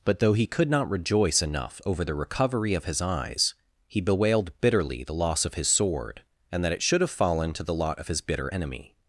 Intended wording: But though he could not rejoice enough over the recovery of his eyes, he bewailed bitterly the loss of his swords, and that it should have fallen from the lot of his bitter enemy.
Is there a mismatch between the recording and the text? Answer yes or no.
yes